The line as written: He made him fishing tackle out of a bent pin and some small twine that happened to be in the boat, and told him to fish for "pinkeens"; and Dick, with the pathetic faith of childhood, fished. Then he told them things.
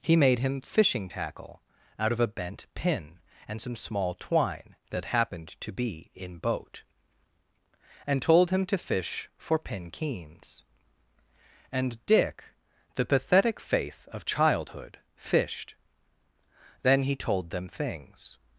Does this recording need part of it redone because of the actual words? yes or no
yes